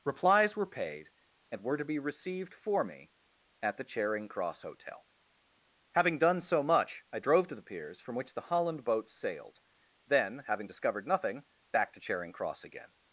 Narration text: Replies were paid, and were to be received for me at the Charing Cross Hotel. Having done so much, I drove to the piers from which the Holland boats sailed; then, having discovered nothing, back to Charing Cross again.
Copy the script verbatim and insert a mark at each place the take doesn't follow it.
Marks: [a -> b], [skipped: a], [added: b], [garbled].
Replies were paid, and were to be received for me at the Charing Cross Hotel. Having done so much, I drove to the piers from which the Holland boats sailed; then, having discovered nothing, back to Charing Cross again.